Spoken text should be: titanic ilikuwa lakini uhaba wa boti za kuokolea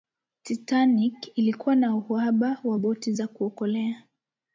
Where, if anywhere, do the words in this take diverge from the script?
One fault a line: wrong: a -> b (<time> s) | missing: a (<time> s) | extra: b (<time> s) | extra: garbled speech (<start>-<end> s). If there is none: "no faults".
wrong: lakini -> na (1.8 s)